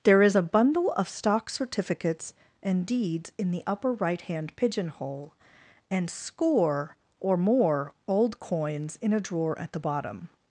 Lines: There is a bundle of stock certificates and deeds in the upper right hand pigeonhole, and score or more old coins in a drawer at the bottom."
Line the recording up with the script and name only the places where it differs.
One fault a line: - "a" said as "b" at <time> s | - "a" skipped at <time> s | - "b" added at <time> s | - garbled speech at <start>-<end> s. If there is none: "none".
none